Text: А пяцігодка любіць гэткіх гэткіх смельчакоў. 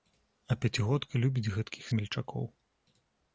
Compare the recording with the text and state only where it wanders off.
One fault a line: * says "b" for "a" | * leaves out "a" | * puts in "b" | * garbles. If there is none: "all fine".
* leaves out "гэткіх"